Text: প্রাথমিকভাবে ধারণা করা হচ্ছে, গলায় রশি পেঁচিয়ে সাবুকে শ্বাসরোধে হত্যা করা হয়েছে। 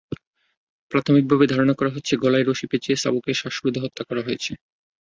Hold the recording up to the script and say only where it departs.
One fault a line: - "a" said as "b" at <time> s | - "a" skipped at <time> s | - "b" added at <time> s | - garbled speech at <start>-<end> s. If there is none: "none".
none